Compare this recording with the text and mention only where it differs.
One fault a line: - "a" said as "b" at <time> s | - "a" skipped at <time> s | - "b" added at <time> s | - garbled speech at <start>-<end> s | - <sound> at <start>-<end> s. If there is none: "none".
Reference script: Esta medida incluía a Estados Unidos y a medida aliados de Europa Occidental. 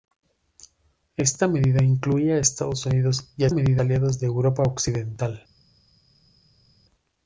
none